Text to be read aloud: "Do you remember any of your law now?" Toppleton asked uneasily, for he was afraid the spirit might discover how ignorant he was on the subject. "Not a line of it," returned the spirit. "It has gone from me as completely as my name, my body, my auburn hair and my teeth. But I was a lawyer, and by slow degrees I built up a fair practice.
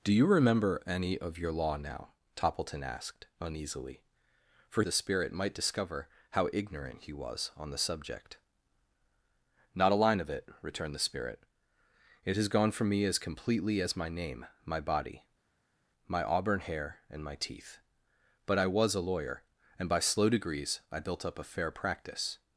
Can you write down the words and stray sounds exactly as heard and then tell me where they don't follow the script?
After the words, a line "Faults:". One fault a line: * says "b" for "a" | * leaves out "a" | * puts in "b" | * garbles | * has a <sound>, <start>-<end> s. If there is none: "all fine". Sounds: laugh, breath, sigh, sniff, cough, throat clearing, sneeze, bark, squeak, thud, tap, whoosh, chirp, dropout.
"Do you remember any of your law now?" Toppleton asked uneasily, for the spirit might discover how ignorant he was on the subject. "Not a line of it," returned the spirit. "It has gone from me as completely as my name, my body, my auburn hair and my teeth. But I was a lawyer, and by slow degrees I built up a fair practice.
Faults:
* leaves out "he was afraid"